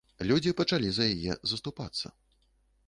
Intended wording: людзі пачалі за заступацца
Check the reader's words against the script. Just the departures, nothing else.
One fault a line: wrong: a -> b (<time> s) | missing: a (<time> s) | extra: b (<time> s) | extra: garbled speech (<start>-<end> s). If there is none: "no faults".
extra: яе (1.1 s)